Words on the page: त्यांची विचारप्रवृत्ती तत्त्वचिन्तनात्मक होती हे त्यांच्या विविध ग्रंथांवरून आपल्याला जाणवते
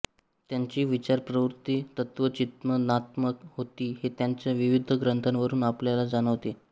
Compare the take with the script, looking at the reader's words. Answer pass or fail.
pass